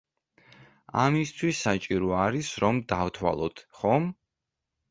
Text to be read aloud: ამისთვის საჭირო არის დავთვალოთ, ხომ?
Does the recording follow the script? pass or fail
fail